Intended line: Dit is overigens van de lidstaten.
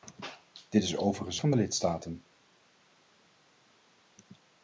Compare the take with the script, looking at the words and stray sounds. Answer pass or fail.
pass